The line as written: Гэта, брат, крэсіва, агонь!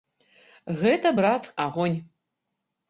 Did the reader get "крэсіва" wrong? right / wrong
wrong